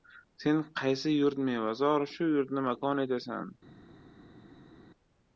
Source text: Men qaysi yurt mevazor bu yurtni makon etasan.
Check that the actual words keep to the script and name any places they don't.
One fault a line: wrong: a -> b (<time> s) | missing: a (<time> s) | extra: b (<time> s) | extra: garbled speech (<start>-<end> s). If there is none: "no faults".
wrong: Men -> Sen (0.4 s)
wrong: bu -> shu (2.1 s)